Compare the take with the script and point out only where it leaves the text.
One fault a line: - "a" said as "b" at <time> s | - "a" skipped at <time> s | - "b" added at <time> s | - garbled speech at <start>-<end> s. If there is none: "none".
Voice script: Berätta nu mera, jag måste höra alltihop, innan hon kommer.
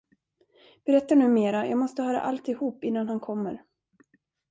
- "hon" said as "han" at 3.1 s